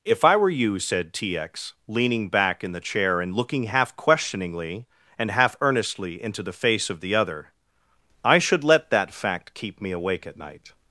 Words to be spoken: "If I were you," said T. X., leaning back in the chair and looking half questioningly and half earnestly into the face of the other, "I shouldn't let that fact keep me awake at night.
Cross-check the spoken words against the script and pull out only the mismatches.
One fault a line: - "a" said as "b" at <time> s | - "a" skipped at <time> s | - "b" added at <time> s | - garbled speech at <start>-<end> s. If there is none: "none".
- "shouldn't" said as "should" at 8.4 s